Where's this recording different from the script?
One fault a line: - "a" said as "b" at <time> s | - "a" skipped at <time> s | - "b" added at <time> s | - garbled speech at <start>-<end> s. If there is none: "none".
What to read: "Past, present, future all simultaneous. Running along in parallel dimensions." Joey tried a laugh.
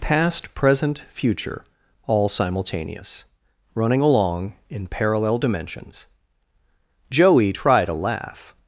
none